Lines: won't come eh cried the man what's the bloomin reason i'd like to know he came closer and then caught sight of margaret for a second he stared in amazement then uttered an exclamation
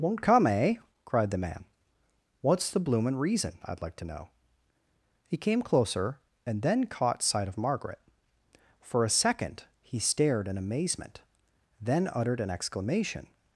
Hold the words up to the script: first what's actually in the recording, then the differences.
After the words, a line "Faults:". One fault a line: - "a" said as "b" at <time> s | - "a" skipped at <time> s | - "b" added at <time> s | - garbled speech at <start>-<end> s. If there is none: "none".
won't come eh cried the man what's the bloomin reason i'd like to know he came closer and then caught sight of margaret for a second he stared in amazement then uttered an exclamation
Faults:
none